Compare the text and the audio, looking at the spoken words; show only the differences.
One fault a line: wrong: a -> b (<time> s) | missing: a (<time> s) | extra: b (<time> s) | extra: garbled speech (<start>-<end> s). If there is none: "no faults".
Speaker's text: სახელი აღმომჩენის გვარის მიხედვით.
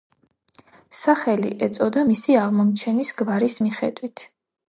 extra: ეწოდა მისი (1.7 s)